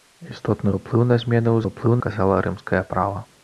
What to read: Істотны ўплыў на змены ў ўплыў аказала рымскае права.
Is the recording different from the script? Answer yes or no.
no